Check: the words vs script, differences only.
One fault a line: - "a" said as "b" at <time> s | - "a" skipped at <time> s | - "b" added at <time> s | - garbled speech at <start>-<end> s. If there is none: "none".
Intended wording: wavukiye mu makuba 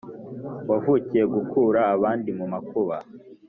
- "gukura abandi" added at 1.3 s